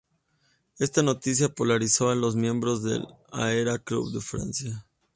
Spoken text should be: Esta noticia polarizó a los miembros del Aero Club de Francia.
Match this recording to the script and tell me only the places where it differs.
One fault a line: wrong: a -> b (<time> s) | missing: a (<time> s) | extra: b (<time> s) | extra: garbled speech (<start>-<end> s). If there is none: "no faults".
no faults